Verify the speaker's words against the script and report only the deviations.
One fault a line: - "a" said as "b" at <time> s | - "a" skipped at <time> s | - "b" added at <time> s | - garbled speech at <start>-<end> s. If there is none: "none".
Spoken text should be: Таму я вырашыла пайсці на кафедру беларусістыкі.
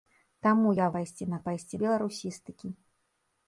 - "вырашыла" skipped at 0.8 s
- "кафедру" said as "пайсці" at 1.5 s